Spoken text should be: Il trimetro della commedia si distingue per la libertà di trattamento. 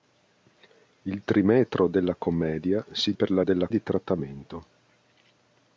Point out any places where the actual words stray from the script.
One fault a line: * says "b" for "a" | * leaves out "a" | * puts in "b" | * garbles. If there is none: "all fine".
* leaves out "distingue"
* says "della" for "libertà"